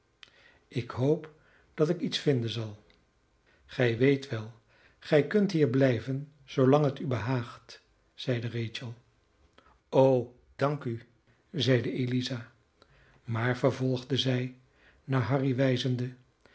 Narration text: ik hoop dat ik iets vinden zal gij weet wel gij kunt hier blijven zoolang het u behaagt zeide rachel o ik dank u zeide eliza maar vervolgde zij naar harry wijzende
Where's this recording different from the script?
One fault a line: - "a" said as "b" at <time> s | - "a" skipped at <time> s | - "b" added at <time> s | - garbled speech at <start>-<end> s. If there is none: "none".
- "ik" skipped at 10.3 s